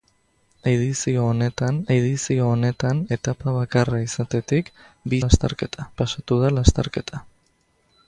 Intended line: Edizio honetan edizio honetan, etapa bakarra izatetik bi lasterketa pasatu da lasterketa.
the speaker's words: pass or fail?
pass